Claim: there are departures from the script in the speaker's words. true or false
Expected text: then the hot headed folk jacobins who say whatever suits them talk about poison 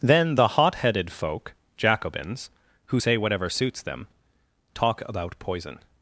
false